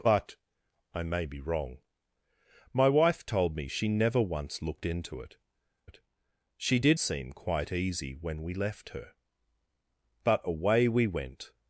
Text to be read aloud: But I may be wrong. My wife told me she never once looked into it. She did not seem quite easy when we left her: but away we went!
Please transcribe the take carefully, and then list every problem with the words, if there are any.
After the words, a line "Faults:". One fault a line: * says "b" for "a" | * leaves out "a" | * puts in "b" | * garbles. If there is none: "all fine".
But I may be wrong. My wife told me she never once looked into it it. She did seem quite easy when we left her: but away we went!
Faults:
* puts in "it"
* leaves out "not"